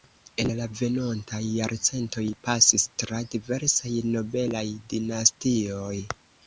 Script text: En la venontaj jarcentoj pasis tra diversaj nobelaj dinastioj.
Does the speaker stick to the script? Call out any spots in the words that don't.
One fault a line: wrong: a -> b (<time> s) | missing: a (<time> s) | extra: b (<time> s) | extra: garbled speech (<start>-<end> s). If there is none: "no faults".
no faults